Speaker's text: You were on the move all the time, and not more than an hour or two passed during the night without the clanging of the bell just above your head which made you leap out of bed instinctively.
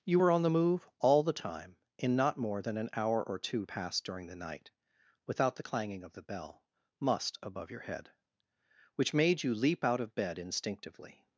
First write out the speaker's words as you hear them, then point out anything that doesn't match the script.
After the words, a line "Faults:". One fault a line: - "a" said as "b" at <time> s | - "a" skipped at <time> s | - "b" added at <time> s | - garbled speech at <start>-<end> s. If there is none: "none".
You were on the move all the time, in not more than an hour or two passed during the night without the clanging of the bell must above your head which made you leap out of bed instinctively.
Faults:
- "and" said as "in" at 2.0 s
- "just" said as "must" at 7.0 s